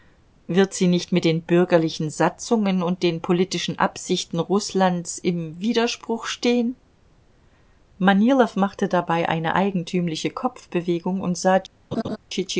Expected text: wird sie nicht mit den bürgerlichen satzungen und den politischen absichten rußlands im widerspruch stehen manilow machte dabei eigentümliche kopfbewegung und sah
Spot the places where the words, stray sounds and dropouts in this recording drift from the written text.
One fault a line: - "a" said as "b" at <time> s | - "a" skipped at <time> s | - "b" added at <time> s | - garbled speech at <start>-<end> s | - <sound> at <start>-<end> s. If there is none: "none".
- "eine" added at 9.3 s
- laugh at 11.9-12.2 s